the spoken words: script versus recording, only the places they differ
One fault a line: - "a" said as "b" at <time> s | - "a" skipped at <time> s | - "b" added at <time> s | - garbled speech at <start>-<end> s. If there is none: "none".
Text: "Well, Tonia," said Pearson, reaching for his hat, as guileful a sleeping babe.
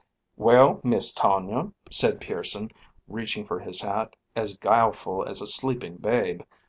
- "Miss" added at 0.8 s
- "as" added at 5.2 s